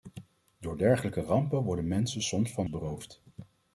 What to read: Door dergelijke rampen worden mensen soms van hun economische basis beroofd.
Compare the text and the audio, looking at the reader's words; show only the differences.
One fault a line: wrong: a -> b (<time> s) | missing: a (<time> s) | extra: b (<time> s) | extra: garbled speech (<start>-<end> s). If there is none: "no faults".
missing: hun economische basis (2.6 s)